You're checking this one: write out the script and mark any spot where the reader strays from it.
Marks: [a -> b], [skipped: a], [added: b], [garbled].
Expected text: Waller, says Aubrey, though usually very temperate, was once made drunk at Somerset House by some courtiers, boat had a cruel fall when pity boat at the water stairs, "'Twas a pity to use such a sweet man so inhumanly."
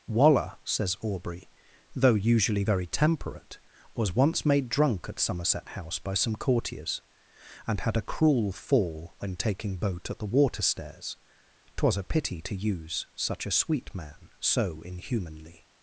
Waller, says Aubrey, though usually very temperate, was once made drunk at Somerset House by some courtiers, [boat -> and] had a cruel fall when [pity -> taking] boat at the water stairs, "'Twas a pity to use such a sweet man so inhumanly."